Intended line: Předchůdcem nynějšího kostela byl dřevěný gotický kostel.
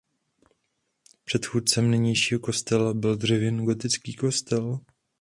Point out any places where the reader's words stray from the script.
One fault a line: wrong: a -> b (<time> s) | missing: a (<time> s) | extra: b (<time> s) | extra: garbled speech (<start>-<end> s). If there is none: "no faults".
no faults